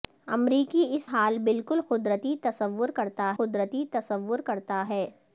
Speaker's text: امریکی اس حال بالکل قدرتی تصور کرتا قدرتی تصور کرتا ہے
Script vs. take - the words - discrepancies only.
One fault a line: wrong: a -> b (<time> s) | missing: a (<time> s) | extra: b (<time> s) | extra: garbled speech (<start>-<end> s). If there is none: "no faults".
no faults